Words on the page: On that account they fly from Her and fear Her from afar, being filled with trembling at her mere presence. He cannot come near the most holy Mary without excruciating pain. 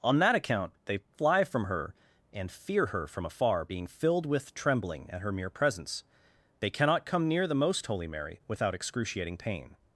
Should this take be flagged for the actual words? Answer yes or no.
yes